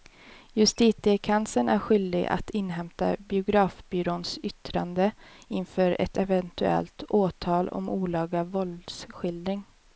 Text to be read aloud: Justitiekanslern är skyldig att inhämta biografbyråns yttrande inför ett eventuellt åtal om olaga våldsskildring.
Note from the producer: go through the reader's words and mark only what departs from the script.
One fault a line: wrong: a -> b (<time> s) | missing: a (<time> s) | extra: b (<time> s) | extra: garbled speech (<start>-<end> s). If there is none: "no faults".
no faults